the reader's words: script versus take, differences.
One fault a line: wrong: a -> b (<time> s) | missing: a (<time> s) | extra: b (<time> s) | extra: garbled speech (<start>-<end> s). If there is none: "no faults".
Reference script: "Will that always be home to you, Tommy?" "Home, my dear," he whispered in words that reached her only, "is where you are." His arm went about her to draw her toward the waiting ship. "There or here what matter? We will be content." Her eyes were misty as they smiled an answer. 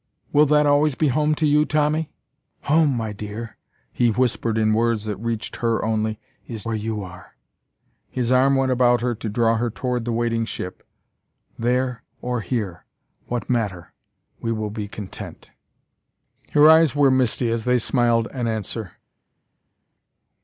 no faults